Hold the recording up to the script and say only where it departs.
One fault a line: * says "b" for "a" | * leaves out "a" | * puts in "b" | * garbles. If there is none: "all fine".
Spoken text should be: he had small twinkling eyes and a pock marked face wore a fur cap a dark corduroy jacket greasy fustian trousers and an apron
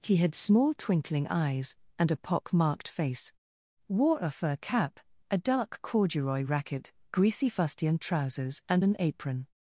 * says "racket" for "jacket"